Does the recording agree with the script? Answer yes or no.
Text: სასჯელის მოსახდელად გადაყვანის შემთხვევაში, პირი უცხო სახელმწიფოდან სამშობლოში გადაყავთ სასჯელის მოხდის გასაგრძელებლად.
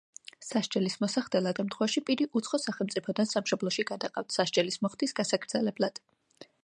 no